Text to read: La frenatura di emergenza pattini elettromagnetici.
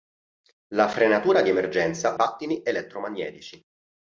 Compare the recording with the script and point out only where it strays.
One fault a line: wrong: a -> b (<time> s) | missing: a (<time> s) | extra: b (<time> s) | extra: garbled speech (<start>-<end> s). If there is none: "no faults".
no faults